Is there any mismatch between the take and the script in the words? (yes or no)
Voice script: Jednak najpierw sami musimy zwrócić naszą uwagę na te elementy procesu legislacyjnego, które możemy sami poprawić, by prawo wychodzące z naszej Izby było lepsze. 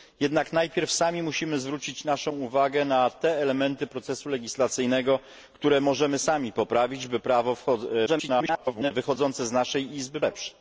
yes